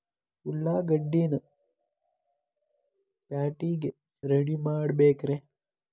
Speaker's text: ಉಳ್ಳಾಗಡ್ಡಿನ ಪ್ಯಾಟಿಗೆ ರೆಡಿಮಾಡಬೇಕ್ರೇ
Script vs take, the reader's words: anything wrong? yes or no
no